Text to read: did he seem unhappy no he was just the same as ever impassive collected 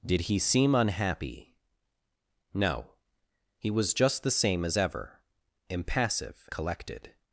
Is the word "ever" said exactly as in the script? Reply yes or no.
yes